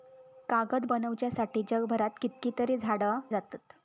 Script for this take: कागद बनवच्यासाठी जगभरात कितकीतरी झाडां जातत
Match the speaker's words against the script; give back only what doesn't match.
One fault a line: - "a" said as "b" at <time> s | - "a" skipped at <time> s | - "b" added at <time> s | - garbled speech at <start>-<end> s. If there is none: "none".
none